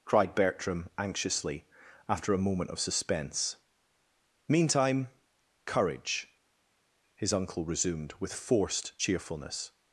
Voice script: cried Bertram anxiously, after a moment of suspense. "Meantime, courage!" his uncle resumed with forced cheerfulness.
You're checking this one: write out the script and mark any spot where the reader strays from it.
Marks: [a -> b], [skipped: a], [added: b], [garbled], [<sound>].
cried Bertram anxiously, after a moment of suspense. "Meantime, courage!" his uncle resumed with forced cheerfulness.